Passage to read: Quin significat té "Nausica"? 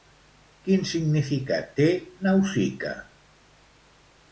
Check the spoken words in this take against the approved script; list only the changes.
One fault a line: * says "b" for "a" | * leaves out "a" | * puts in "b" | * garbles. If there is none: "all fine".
all fine